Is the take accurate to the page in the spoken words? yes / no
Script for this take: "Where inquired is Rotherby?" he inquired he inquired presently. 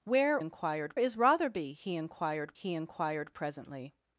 yes